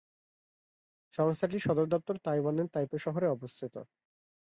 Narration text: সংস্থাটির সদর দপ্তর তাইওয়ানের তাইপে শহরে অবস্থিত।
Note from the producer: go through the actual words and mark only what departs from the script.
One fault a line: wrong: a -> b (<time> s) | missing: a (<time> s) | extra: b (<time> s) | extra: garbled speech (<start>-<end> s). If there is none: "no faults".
no faults